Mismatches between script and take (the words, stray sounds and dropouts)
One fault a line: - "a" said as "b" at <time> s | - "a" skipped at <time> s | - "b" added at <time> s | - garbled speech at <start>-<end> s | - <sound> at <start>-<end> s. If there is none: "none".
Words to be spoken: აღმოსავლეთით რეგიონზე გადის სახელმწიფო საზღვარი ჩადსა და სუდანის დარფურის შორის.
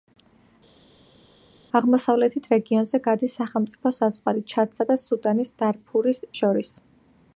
none